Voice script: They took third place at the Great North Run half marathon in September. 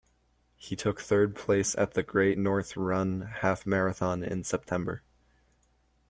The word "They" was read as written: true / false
false